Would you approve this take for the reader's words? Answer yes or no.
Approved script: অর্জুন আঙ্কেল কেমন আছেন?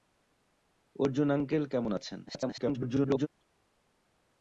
no